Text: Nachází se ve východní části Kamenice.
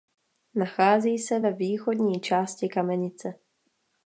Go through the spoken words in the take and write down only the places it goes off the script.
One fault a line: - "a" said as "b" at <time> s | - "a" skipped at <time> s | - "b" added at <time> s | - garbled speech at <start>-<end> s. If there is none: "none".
none